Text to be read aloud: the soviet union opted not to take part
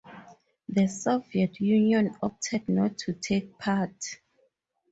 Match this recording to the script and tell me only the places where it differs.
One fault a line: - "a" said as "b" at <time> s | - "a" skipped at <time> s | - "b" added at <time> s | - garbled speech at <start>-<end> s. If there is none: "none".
none